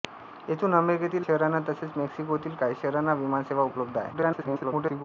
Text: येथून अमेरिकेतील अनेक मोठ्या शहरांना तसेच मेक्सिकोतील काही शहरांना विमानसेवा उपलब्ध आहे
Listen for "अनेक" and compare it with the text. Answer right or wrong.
wrong